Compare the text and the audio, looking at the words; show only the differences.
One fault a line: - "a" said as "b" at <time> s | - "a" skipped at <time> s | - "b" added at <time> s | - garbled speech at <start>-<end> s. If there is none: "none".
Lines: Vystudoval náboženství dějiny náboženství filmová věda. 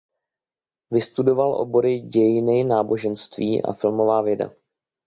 - "náboženství" said as "obory" at 1.6 s
- "a" added at 3.6 s